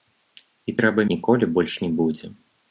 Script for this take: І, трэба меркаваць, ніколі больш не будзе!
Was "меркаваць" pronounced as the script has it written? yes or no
no